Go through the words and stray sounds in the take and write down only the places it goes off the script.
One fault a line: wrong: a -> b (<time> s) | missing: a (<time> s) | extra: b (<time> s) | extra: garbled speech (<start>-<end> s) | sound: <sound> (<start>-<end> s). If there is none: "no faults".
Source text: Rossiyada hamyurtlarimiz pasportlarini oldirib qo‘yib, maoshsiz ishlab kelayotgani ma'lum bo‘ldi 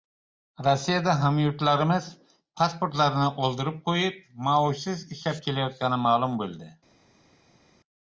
no faults